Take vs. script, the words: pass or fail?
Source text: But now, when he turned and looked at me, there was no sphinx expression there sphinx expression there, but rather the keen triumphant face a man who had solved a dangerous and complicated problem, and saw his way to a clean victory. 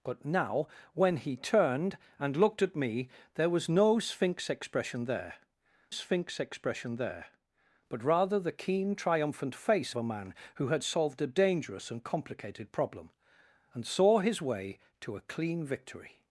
pass